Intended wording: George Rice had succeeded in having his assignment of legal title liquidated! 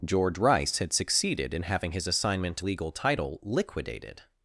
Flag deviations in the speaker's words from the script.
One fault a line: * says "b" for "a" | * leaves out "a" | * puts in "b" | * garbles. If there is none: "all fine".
* leaves out "of"